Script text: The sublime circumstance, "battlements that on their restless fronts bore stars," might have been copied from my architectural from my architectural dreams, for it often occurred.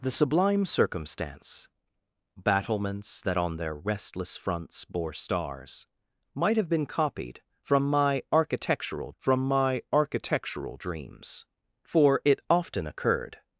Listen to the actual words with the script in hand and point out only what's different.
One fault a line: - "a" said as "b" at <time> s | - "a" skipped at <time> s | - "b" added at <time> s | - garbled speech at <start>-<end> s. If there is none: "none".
none